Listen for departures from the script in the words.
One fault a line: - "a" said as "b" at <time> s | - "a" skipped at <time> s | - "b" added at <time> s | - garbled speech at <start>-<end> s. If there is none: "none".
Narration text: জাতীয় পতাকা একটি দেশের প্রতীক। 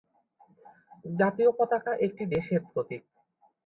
none